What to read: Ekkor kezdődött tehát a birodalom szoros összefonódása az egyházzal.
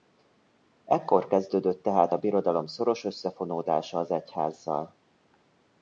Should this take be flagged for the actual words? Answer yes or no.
no